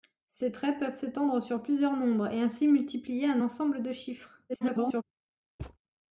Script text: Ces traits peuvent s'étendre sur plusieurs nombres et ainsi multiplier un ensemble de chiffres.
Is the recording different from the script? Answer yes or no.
yes